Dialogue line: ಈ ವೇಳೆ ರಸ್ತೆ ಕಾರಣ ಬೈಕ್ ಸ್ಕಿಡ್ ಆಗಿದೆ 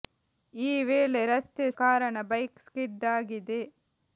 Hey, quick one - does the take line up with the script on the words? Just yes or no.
yes